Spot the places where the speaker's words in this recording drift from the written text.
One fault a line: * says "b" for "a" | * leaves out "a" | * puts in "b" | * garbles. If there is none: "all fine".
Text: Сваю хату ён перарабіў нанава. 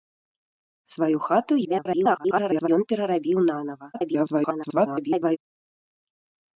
* garbles
* garbles